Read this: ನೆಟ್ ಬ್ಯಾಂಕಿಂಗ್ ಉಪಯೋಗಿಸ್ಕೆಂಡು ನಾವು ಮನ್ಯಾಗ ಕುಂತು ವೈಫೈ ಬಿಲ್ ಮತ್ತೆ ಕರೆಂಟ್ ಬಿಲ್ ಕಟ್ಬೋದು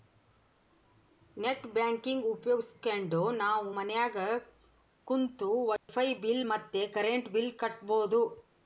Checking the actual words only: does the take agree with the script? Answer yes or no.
yes